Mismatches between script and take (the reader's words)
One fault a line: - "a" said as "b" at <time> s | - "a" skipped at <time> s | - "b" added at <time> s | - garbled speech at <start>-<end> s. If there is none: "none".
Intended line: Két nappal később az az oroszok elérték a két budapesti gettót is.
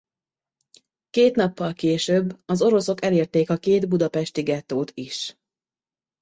- "az" skipped at 2.6 s